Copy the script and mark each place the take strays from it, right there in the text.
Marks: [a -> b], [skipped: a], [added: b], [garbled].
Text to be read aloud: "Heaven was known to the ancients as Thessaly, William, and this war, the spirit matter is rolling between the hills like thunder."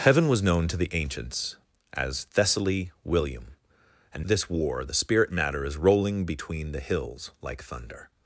"Heaven was known to the ancients as Thessaly, William, and this war, the spirit matter is rolling between the hills like thunder."